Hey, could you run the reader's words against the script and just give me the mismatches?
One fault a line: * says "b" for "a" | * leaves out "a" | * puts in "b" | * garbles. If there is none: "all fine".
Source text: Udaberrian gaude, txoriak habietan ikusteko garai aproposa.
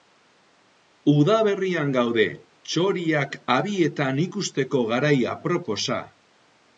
all fine